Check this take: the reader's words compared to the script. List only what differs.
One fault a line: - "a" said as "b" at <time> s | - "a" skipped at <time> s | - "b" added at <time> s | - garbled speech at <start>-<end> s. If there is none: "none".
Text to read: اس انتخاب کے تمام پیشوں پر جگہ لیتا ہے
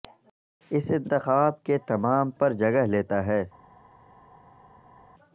- "پیشوں" skipped at 2.3 s